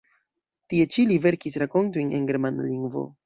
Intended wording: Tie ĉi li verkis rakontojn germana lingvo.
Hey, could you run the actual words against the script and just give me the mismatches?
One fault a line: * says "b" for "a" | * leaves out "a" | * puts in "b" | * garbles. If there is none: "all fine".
* puts in "en"